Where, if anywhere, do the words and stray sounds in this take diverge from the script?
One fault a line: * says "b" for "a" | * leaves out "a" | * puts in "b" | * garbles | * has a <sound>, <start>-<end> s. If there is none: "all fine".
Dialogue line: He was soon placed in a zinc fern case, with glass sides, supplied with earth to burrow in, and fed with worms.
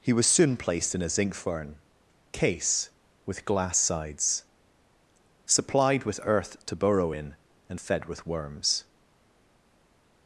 all fine